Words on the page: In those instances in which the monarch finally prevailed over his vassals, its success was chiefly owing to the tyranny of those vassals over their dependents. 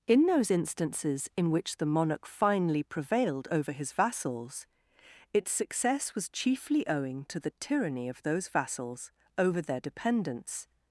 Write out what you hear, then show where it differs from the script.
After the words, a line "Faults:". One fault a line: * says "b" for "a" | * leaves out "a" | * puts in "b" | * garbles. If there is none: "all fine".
In those instances in which the monarch finally prevailed over his vassals, its success was chiefly owing to the tyranny of those vassals over their dependents.
Faults:
all fine